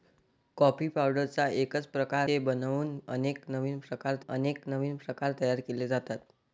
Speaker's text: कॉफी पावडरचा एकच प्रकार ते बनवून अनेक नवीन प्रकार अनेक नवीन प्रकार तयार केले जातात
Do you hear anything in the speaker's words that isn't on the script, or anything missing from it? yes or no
no